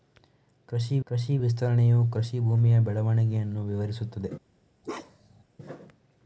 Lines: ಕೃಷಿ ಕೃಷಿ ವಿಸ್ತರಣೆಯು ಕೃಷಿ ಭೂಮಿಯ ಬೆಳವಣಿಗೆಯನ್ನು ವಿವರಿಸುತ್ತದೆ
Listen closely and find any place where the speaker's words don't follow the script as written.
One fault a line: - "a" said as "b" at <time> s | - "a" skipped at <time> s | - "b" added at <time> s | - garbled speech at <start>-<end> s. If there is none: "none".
none